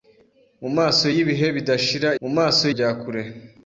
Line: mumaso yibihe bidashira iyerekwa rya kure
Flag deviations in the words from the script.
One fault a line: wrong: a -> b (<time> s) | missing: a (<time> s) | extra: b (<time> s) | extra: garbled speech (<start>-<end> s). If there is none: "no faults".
wrong: iyerekwa -> mumaso (2.2 s)